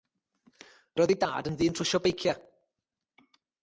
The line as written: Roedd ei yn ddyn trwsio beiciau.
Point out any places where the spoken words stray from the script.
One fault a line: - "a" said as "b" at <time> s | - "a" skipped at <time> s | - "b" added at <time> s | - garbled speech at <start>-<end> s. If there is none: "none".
- "dad" added at 1.2 s